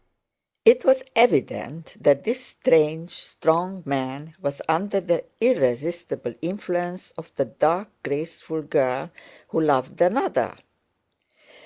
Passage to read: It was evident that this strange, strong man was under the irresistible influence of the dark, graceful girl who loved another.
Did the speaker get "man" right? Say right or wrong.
right